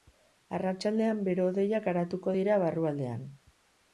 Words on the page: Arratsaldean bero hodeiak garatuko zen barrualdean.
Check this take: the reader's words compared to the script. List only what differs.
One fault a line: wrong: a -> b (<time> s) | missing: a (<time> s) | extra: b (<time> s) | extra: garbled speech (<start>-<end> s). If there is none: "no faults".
wrong: zen -> dira (2.4 s)